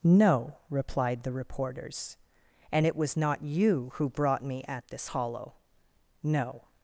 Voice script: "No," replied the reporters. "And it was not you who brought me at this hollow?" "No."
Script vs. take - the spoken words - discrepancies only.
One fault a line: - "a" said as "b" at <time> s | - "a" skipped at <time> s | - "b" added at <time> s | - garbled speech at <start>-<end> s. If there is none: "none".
none